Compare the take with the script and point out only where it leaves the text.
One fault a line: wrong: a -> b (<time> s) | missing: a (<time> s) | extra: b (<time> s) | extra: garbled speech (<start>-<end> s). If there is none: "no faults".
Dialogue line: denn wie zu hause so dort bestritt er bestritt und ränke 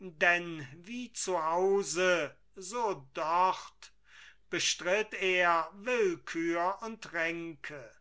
wrong: bestritt -> willkür (5.7 s)